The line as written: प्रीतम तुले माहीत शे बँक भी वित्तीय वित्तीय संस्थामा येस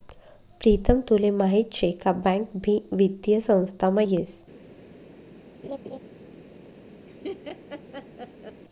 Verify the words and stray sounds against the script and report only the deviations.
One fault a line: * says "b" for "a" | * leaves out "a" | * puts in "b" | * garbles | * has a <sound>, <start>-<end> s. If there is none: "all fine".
* puts in "का"
* leaves out "वित्तीय"
* has a laugh, 5.6-6.0 s
* has a laugh, 7.1-8.6 s